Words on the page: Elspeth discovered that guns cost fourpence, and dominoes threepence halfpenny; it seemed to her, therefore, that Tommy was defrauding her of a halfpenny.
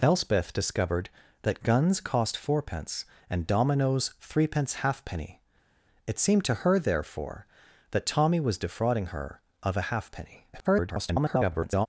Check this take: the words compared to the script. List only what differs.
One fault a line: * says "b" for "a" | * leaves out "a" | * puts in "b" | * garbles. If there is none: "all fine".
* garbles